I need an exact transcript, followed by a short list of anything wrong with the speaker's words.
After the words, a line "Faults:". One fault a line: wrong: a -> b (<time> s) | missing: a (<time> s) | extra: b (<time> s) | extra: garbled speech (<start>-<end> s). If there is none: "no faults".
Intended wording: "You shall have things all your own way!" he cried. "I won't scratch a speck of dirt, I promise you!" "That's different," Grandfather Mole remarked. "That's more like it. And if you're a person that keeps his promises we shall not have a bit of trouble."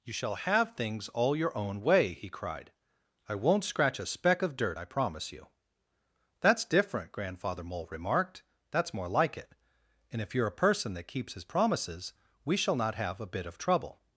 "You shall have things all your own way!" he cried. "I won't scratch a speck of dirt, I promise you!" "That's different," Grandfather Mole remarked. "That's more like it. And if you're a person that keeps his promises we shall not have a bit of trouble."
Faults:
no faults